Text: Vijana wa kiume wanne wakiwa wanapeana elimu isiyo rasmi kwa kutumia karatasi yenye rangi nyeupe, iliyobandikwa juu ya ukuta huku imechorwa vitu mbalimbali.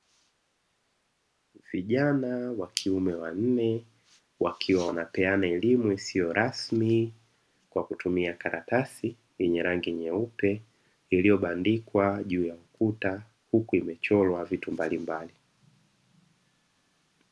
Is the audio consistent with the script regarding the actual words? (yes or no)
yes